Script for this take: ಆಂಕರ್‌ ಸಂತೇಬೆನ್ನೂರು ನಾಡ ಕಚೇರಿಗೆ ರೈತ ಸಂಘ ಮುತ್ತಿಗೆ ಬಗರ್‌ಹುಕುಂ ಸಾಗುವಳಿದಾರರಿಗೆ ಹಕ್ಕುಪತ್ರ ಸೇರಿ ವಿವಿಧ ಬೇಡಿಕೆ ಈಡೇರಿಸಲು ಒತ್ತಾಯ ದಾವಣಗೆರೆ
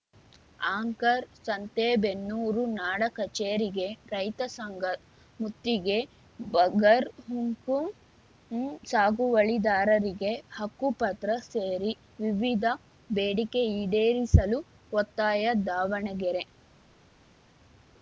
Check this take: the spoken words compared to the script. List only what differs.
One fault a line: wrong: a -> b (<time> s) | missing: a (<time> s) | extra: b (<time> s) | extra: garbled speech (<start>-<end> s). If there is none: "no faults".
no faults